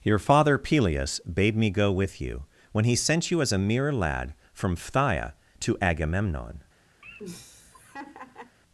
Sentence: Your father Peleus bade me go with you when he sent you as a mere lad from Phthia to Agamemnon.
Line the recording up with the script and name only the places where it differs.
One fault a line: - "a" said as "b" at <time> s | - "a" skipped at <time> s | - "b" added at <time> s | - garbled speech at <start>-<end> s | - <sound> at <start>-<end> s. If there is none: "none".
- laugh at 7.0-8.6 s